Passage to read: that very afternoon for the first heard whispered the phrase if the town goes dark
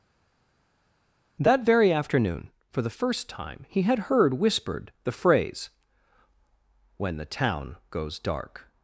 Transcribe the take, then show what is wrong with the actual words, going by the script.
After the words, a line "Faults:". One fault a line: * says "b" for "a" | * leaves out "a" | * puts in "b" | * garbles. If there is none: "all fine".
that very afternoon for the first time he had heard whispered the phrase when the town goes dark
Faults:
* puts in "time he had"
* says "when" for "if"